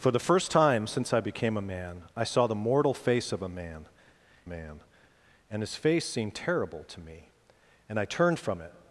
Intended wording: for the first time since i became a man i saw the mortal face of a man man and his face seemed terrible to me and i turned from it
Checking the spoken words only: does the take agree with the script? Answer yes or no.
yes